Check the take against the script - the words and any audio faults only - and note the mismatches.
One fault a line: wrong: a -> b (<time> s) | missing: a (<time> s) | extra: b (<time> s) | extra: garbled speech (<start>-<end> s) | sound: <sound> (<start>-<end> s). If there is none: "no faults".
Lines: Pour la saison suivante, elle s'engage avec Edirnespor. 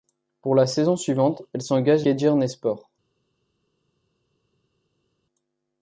missing: avec (2.1 s)